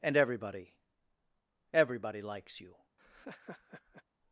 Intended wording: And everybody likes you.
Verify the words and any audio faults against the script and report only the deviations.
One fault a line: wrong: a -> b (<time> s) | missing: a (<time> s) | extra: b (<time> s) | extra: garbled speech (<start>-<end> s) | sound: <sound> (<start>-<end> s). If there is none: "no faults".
extra: everybody (1.7 s)
sound: laugh (3.0-4.0 s)